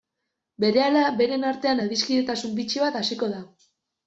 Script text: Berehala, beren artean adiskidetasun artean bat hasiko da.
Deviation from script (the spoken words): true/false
true